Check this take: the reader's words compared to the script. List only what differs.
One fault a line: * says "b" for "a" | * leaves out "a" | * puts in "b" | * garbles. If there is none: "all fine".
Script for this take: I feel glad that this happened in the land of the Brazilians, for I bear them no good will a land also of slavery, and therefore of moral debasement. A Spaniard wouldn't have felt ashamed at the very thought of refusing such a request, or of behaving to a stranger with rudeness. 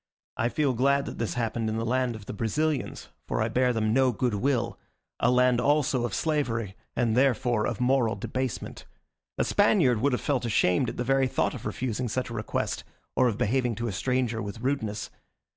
* says "would" for "wouldn't"